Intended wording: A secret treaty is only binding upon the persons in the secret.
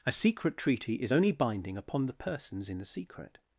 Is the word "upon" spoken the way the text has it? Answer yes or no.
yes